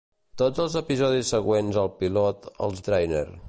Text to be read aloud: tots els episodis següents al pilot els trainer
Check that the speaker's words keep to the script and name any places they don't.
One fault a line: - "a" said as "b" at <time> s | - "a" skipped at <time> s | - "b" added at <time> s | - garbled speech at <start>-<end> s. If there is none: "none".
none